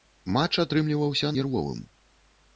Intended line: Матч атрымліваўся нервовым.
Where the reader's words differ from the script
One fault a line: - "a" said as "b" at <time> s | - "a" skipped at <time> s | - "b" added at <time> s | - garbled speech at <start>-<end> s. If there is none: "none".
none